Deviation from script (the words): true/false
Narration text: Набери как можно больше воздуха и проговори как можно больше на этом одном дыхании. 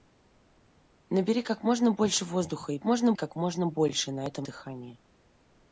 true